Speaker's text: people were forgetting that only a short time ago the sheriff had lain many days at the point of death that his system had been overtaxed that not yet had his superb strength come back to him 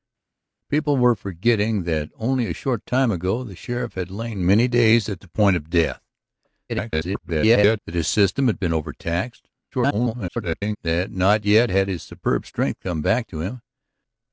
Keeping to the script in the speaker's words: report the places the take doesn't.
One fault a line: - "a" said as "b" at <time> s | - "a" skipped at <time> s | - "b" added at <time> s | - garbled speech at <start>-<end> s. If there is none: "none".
- garbled speech at 6.7-7.8 s
- garbled speech at 9.7-10.8 s